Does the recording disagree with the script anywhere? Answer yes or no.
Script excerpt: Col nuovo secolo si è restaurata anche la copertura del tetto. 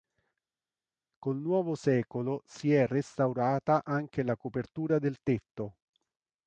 no